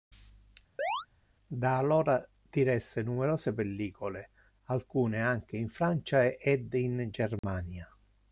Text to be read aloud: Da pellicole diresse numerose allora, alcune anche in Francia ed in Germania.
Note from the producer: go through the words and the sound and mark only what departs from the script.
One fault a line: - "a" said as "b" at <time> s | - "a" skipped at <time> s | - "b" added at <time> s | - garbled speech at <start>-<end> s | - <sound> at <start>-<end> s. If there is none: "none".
- chirp at 0.8-1.1 s
- "pellicole" said as "allora" at 1.8 s
- "allora" said as "pellicole" at 3.5 s
- dropout at 7.4-7.4 s